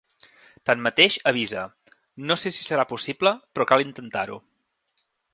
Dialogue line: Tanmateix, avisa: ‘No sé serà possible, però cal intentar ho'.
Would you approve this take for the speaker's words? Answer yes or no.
no